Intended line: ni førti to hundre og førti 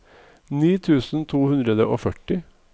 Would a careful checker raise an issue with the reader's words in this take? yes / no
yes